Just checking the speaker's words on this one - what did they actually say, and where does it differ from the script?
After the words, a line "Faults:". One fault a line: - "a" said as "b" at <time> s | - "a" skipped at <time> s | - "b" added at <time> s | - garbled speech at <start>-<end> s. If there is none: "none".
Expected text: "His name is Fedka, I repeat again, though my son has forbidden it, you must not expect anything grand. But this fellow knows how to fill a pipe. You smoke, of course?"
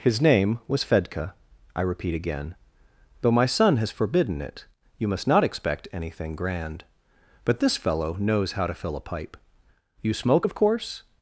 "His name was Fedka, I repeat again, though my son has forbidden it, you must not expect anything grand. But this fellow knows how to fill a pipe. You smoke, of course?"
Faults:
- "is" said as "was" at 0.7 s